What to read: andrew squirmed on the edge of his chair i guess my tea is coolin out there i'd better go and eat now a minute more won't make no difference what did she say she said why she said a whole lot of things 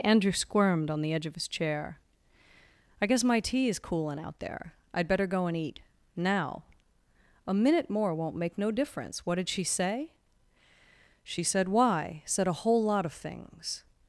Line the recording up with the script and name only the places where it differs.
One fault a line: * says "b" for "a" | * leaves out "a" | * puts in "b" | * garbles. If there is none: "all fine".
* leaves out "she"